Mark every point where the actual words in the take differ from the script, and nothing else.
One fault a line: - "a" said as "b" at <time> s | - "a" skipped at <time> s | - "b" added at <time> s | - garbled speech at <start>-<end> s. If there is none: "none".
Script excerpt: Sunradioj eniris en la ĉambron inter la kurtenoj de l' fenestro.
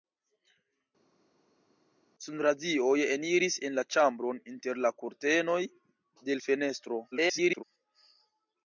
- garbled speech at 7.1-7.6 s